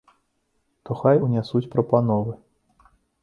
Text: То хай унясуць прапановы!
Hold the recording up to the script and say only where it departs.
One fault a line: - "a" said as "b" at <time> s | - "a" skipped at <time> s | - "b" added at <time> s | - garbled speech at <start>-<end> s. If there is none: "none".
none